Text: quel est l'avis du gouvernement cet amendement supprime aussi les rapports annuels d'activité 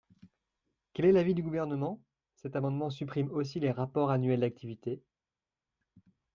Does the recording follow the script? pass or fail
pass